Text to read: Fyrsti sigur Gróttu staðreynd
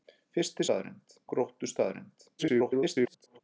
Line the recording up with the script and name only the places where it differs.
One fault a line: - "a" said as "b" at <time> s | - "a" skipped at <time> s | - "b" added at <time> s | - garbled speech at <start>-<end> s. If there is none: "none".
- "sigur" said as "staðreynd" at 0.6 s
- garbled speech at 2.4-3.4 s